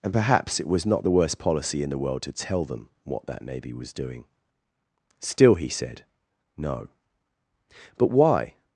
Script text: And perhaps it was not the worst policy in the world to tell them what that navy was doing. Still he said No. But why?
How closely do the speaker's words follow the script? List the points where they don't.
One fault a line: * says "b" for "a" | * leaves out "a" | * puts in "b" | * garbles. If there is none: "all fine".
all fine